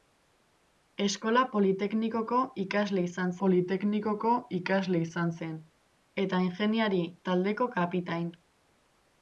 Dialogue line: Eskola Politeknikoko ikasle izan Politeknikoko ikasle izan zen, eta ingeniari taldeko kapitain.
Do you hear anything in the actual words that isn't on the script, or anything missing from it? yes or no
no